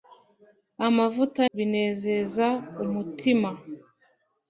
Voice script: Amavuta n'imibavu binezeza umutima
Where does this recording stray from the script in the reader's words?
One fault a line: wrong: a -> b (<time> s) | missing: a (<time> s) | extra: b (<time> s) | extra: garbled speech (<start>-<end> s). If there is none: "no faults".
missing: n'imibavu (1.4 s)